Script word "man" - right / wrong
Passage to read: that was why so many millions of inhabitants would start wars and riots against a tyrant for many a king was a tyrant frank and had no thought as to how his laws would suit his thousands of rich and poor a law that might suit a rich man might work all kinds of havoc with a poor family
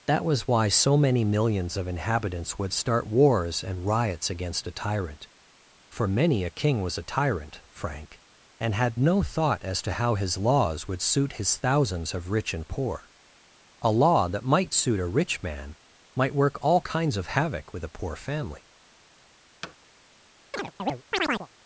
right